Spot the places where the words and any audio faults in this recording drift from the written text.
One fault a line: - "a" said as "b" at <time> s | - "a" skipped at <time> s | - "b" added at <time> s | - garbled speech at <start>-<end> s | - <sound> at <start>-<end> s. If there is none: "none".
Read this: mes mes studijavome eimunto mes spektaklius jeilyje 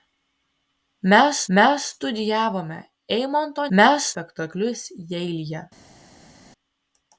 none